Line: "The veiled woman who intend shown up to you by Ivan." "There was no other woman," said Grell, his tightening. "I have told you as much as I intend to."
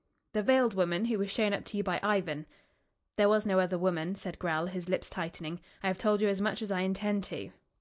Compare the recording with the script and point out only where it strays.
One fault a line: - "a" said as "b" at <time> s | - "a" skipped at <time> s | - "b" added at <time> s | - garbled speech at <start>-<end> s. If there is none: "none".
- "intend" said as "was" at 1.2 s
- "lips" added at 4.9 s